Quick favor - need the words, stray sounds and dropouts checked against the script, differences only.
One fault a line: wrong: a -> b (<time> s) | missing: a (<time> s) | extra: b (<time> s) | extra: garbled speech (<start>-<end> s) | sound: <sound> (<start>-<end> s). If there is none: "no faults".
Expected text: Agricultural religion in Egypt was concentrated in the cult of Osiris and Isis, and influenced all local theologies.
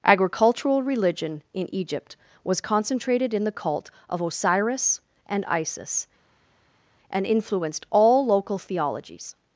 no faults